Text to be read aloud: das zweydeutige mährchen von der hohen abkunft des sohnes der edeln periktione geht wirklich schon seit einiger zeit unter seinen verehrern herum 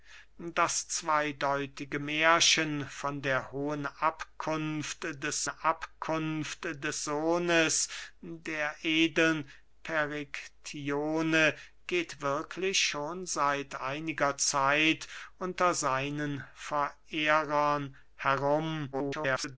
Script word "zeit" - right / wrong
right